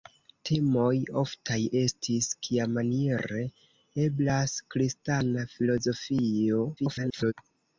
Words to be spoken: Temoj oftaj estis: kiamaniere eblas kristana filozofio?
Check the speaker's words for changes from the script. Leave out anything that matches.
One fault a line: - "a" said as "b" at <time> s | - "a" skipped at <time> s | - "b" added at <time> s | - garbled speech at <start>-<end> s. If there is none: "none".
- garbled speech at 6.8-7.3 s